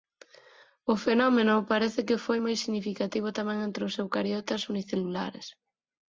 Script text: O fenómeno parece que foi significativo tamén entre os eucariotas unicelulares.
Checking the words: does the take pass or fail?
fail